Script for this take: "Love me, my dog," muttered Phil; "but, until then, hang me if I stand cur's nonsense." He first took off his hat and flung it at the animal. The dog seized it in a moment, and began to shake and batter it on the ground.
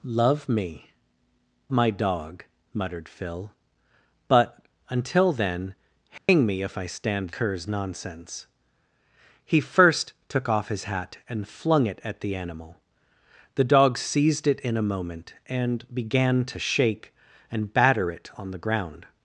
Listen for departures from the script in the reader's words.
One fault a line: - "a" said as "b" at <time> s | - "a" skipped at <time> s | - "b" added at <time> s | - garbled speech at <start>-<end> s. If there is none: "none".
none